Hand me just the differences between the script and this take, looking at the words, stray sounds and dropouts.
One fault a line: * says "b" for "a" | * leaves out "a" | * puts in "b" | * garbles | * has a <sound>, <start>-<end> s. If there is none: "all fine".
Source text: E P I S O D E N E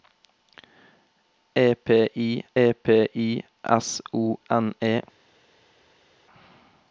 * puts in "e P I"
* leaves out "D E"